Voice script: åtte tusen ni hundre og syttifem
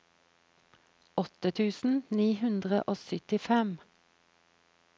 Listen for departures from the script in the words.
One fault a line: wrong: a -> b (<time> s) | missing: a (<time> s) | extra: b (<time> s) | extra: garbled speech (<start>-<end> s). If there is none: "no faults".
no faults